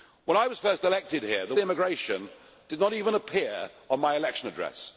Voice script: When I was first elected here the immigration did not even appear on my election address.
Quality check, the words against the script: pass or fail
pass